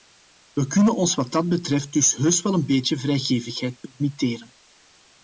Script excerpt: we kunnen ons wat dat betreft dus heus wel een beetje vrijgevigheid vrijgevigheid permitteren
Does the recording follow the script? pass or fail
fail